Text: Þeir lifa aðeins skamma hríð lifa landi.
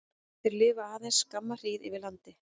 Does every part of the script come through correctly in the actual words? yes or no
no